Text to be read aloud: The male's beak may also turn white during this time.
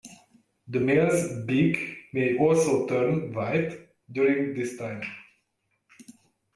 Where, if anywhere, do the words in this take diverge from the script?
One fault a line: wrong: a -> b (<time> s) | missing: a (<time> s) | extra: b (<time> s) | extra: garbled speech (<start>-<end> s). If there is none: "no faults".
no faults